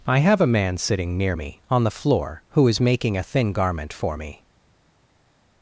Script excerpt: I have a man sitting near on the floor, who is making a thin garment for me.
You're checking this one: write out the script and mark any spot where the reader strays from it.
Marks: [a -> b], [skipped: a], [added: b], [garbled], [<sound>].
I have a man sitting near [added: me] on the floor, who is making a thin garment for me.